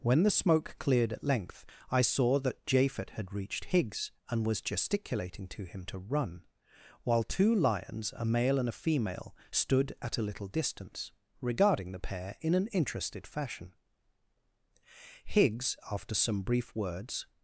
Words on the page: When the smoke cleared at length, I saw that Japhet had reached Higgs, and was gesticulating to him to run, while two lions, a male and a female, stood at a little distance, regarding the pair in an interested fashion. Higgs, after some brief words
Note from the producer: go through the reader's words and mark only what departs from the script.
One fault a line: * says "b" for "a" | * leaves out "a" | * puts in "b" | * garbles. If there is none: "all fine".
all fine